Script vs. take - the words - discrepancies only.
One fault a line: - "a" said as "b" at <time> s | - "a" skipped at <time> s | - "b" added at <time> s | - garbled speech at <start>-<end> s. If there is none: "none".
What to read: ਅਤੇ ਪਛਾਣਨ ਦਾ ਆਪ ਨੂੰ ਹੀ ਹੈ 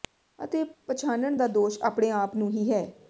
- "ਦੋਸ਼ ਆਪਣੇ" added at 1.5 s